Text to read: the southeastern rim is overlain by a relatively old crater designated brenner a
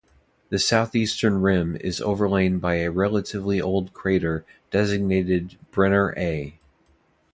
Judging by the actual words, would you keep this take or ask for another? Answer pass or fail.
pass